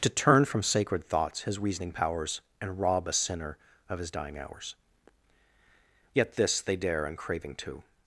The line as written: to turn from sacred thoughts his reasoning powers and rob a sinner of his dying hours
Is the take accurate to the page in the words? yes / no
no